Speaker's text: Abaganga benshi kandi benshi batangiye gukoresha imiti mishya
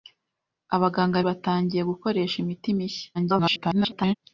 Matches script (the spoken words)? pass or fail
fail